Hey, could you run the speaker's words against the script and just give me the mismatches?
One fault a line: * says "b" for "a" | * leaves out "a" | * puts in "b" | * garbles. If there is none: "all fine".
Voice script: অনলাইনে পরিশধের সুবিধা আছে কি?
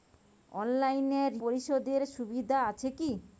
all fine